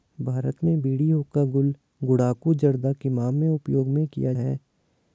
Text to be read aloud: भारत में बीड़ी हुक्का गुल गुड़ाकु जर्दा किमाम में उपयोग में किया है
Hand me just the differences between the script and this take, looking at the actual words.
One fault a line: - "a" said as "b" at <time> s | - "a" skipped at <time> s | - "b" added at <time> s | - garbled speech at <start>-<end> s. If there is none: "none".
none